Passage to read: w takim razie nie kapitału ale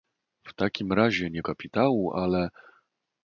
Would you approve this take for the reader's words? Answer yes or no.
yes